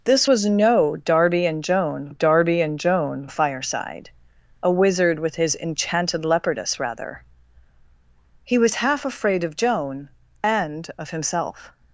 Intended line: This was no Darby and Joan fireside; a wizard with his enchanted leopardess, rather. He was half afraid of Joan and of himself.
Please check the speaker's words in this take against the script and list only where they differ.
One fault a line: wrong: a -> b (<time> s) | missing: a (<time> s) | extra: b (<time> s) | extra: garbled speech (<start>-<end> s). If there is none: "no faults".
extra: Darby and Joan (2.1 s)